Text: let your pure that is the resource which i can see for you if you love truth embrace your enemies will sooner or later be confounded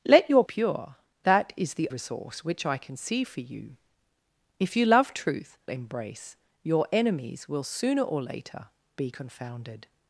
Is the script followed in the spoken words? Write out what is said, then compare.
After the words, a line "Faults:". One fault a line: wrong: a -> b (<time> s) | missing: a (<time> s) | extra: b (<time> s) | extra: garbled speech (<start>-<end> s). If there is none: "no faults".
let your pure that is the resource which i can see for you if you love truth embrace your enemies will sooner or later be confounded
Faults:
no faults